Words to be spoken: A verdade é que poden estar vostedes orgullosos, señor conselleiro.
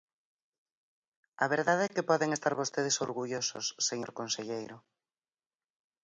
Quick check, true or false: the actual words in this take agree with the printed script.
true